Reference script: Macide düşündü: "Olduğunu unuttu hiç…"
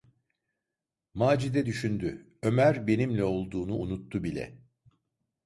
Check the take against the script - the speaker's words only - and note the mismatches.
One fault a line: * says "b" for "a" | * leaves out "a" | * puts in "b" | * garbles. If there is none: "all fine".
* puts in "Ömer benimle"
* says "bile" for "hiç"